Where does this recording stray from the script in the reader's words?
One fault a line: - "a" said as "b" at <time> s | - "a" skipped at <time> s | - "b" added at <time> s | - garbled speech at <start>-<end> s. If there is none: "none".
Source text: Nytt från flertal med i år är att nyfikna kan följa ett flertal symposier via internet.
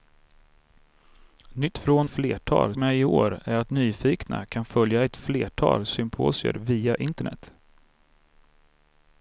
none